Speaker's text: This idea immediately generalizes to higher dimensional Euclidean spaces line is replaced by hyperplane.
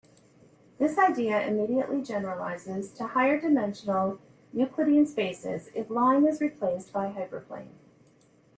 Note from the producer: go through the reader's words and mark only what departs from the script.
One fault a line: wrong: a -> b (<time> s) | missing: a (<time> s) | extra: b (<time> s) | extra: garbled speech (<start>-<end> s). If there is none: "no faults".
extra: if (5.8 s)